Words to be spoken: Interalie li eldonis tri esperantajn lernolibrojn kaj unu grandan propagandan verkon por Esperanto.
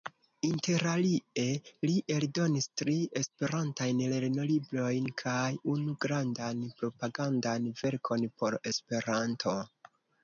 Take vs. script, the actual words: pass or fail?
pass